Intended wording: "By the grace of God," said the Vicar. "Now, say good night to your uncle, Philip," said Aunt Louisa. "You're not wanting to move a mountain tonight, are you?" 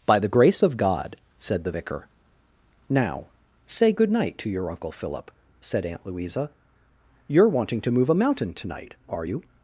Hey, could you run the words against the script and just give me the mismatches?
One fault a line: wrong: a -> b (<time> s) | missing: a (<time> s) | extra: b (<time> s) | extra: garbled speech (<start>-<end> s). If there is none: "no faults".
missing: not (7.5 s)